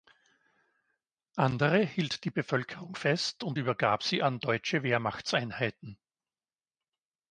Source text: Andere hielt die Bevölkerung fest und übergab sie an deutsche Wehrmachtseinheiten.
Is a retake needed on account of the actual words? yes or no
no